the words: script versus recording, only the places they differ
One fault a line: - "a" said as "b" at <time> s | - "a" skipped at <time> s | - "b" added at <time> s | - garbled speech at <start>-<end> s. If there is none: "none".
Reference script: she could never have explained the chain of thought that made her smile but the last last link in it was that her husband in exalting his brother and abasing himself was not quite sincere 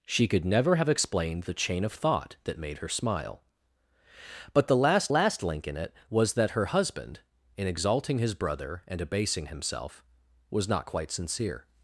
none